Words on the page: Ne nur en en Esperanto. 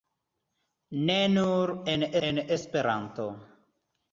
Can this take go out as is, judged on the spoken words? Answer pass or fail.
pass